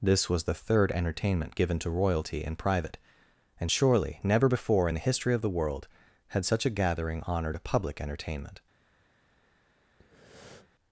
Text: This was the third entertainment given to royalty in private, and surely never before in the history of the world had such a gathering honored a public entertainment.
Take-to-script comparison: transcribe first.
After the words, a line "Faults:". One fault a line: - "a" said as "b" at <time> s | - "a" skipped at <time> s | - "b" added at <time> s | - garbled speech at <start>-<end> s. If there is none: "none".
This was the third entertainment given to royalty in private, and surely never before in the history of the world had such a gathering honored a public entertainment.
Faults:
none